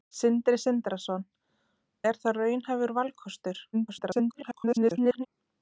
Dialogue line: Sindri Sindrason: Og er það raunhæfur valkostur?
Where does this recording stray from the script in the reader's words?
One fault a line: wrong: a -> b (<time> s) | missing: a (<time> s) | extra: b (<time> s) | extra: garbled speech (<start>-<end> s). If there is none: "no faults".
missing: Og (1.3 s)
extra: garbled speech (3.7-5.3 s)